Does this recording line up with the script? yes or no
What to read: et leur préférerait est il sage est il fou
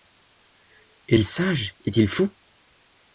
no